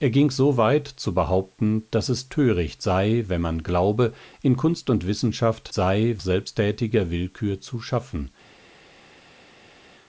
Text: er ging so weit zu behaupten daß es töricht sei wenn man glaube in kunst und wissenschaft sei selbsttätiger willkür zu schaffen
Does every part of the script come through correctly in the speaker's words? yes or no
yes